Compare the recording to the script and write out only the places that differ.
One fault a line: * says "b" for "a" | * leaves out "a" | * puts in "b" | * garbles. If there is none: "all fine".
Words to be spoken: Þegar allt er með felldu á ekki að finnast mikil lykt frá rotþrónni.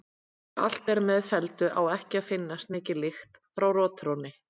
all fine